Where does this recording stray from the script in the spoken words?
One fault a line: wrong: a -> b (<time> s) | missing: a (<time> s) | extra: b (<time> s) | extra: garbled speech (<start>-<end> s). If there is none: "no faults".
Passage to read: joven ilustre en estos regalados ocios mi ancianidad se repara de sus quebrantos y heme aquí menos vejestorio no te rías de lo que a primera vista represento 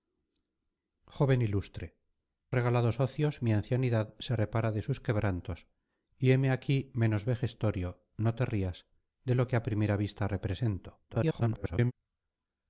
missing: en estos (1.9 s)
extra: garbled speech (11.1-11.9 s)